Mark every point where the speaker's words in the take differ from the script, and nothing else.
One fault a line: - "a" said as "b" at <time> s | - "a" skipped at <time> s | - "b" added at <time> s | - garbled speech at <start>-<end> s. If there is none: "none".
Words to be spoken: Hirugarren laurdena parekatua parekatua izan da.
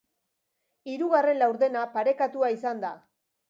- "parekatua" skipped at 2.5 s